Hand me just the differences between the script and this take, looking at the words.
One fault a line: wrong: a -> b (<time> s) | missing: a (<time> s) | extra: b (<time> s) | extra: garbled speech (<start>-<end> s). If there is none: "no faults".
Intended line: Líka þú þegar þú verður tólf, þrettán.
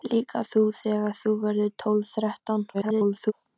extra: garbled speech (2.7-3.3 s)